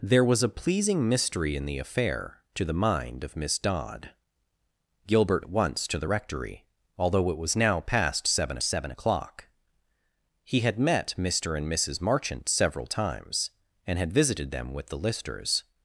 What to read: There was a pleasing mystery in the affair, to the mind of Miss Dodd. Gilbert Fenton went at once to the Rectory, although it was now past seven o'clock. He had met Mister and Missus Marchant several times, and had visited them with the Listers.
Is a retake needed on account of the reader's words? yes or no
yes